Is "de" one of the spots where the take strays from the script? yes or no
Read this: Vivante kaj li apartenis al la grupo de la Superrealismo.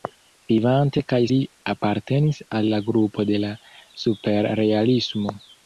no